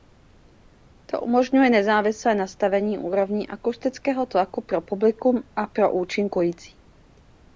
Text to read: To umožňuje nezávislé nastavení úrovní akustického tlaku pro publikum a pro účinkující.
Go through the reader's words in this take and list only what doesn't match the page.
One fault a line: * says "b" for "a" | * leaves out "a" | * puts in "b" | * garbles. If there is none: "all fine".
all fine